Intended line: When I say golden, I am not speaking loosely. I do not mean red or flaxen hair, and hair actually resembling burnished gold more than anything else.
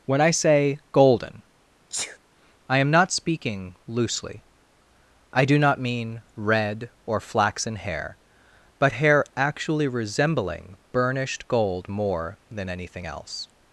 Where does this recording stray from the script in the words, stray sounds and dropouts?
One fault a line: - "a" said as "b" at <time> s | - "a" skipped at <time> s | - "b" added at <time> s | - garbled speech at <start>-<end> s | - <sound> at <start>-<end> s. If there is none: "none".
- sneeze at 1.9-2.2 s
- "and" said as "but" at 8.8 s